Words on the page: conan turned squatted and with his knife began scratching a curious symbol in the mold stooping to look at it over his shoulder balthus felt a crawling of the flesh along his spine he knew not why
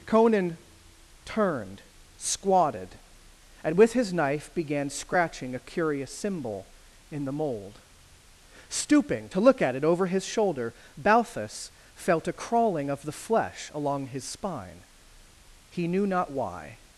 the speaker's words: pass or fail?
pass